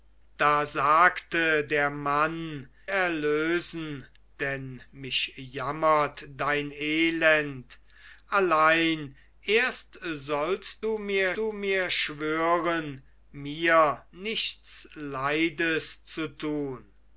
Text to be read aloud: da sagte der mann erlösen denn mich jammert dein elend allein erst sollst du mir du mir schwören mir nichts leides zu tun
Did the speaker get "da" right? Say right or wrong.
right